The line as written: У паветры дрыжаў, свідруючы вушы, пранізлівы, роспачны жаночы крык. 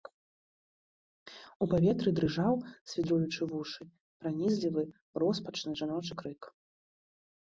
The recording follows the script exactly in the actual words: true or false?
true